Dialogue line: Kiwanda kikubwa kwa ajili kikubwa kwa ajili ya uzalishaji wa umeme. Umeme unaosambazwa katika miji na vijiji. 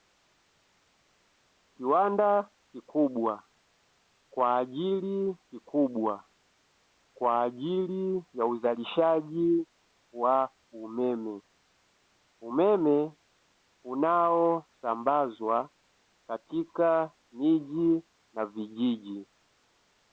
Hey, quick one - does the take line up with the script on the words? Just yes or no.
yes